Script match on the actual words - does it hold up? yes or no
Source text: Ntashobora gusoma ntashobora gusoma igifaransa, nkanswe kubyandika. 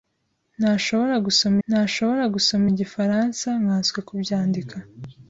yes